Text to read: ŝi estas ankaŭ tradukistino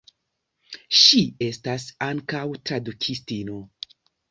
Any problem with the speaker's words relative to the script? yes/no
no